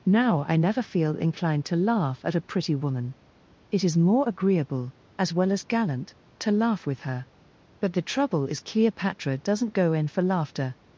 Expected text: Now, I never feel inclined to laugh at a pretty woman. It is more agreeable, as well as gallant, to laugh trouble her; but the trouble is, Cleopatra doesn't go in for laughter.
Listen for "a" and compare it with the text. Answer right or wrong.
right